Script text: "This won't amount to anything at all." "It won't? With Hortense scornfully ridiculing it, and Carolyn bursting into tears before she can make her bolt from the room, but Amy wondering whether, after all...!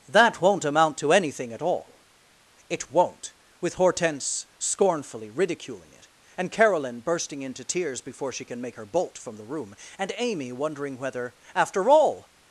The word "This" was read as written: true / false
false